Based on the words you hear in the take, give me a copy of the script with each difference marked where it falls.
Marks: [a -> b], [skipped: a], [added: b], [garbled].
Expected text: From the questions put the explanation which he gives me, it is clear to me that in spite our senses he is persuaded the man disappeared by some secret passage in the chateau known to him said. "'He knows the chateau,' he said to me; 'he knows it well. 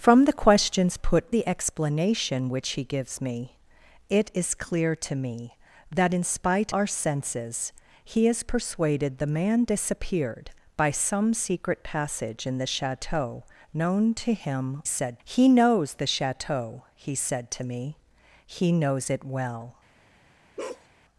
From the questions put the explanation which he gives me, it is clear to me that in spite our senses he is persuaded the man disappeared by some secret passage in the chateau known to him said. "'He knows the chateau,' he said to me; 'he knows it well.